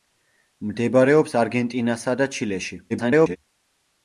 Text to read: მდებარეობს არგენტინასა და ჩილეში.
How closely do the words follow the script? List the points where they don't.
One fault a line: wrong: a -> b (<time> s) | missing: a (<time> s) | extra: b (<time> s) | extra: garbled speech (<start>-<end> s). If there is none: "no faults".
extra: garbled speech (2.9-3.4 s)